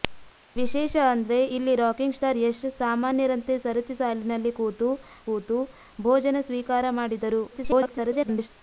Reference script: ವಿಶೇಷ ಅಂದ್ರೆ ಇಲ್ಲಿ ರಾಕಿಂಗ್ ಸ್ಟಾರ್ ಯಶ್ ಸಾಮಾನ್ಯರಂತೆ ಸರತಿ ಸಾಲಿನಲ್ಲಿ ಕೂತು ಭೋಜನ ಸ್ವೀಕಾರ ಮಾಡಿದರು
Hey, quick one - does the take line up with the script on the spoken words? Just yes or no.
no